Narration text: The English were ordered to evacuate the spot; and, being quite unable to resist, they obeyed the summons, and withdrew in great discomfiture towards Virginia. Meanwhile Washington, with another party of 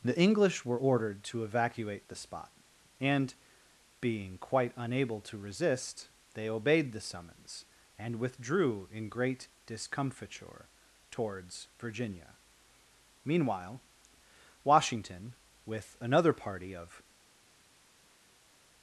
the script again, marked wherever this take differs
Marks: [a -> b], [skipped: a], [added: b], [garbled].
The English were ordered to evacuate the spot; and, being quite unable to resist, they obeyed the summons, and withdrew in great discomfiture towards Virginia. Meanwhile Washington, with another party of